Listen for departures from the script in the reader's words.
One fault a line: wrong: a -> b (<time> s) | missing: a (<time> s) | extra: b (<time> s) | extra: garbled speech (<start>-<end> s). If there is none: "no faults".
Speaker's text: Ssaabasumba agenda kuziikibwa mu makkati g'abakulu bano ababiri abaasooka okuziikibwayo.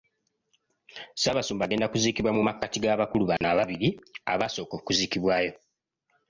no faults